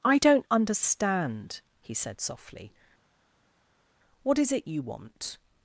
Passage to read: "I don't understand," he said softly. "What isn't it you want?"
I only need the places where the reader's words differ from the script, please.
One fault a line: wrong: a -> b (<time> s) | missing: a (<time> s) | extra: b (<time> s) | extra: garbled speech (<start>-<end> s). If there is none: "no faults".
wrong: isn't -> is (4.4 s)